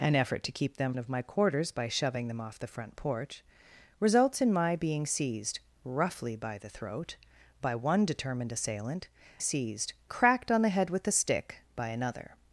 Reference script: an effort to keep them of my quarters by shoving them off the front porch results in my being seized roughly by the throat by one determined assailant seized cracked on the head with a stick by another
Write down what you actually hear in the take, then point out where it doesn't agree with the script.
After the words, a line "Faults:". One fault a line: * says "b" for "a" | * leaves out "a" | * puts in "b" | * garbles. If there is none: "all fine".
an effort to keep them of my quarters by shoving them off the front porch results in my being seized roughly by the throat by one determined assailant seized cracked on the head with a stick by another
Faults:
all fine